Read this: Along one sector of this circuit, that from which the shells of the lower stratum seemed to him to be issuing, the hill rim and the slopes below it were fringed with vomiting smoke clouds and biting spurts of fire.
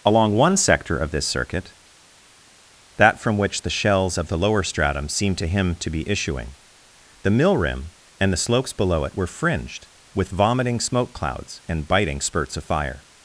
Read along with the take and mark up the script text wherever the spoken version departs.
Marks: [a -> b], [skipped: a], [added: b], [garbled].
Along one sector of this circuit, that from which the shells of the lower stratum seemed to him to be issuing, the [hill -> mill] rim and the slopes below it were fringed with vomiting smoke clouds and biting spurts of fire.